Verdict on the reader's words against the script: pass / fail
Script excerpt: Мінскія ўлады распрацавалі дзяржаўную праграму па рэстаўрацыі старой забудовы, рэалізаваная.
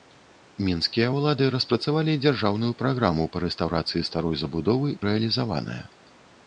pass